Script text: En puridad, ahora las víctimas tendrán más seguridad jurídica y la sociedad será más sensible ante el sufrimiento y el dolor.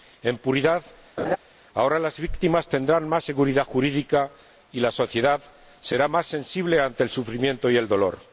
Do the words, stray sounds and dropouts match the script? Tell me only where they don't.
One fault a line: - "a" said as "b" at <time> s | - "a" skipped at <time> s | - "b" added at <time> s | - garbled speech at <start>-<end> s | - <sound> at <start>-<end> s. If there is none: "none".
- laugh at 1.2-1.4 s